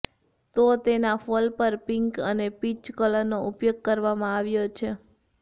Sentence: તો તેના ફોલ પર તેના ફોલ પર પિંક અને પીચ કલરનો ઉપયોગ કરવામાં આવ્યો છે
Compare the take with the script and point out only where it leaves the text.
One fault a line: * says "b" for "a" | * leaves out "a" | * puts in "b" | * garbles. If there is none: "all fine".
* leaves out "તેના ફોલ પર"